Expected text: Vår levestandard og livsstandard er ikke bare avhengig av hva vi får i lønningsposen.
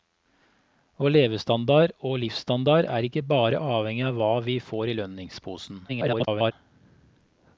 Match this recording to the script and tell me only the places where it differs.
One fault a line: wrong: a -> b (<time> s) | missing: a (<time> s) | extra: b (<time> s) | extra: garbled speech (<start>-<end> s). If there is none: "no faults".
extra: garbled speech (5.9-6.5 s)